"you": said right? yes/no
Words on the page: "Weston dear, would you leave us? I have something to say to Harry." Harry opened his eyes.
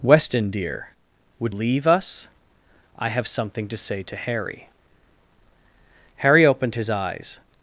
no